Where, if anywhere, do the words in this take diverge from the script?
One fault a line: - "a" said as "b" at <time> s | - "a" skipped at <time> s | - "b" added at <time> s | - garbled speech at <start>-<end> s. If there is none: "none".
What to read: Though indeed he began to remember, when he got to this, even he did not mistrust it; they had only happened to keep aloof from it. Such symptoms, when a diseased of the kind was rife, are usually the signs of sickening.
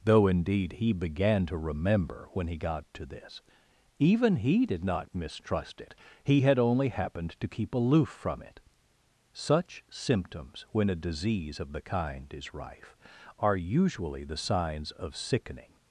- "they" said as "he" at 6.2 s
- "diseased" said as "disease" at 10.9 s
- "was" said as "is" at 12.3 s